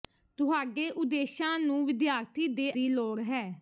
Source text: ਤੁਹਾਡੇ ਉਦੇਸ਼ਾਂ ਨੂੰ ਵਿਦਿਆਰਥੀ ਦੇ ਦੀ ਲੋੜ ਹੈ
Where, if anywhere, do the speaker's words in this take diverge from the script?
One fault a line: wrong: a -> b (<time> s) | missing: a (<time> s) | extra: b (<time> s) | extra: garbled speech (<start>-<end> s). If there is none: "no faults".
no faults